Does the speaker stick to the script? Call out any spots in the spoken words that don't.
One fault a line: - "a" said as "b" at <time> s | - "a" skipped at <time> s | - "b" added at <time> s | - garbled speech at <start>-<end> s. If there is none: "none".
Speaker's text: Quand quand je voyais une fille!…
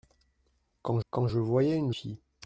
none